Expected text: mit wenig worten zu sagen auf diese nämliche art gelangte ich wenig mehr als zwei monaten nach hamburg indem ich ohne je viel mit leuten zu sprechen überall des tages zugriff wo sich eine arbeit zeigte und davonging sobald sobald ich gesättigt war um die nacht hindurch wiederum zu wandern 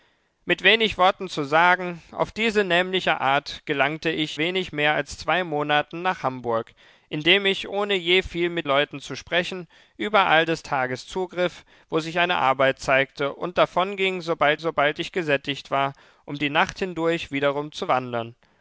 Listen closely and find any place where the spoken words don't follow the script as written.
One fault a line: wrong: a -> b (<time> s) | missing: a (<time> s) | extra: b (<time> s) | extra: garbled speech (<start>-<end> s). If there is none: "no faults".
no faults